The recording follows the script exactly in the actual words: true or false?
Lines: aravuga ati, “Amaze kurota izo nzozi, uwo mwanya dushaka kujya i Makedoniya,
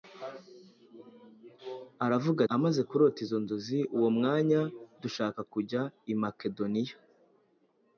false